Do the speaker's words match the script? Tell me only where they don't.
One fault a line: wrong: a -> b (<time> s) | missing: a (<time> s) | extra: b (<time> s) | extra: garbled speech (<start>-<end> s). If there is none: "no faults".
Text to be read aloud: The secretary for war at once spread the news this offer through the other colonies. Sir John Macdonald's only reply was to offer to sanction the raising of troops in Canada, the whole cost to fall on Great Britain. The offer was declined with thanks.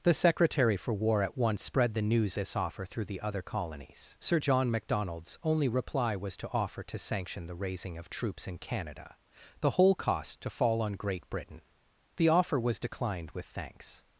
no faults